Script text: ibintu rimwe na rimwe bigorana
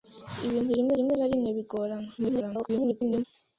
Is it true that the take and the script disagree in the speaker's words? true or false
true